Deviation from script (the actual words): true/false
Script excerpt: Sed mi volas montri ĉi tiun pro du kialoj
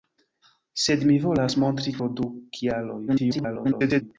true